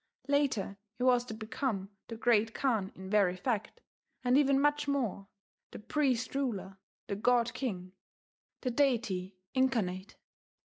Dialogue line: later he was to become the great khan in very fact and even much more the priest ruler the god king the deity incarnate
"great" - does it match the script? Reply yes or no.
yes